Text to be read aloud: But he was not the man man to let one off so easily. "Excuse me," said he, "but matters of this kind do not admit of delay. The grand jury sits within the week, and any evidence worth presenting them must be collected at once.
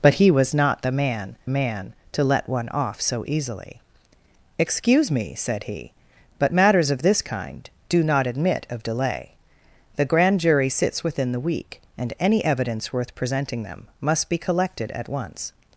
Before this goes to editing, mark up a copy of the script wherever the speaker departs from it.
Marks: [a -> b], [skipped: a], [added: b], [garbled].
But he was not the man man to let one off so easily. "Excuse me," said he, "but matters of this kind do not admit of delay. The grand jury sits within the week, and any evidence worth presenting them must be collected at once.